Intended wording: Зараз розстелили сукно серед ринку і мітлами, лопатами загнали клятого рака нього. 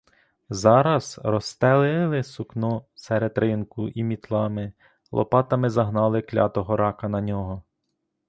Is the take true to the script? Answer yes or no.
no